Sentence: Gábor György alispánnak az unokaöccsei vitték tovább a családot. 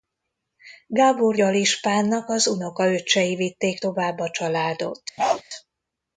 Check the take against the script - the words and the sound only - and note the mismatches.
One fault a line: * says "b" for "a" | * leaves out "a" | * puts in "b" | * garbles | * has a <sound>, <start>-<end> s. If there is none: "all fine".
* leaves out "György"
* has a bark, 5.2-5.4 s